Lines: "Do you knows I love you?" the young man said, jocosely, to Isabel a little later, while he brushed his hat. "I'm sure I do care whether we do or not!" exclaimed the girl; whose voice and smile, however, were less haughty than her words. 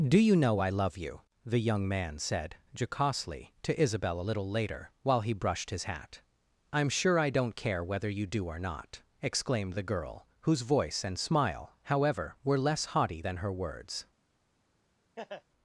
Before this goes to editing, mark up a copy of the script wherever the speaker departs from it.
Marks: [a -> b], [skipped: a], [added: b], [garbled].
"Do you [knows -> know] I love you?" the young man said, jocosely, to Isabel a little later, while he brushed his hat. "I'm sure I [do -> don't] care whether [we -> you] do or not!" exclaimed the girl; whose voice and smile, however, were less haughty than her words.